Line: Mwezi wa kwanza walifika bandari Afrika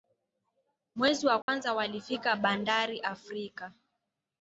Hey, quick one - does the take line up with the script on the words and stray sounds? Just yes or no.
no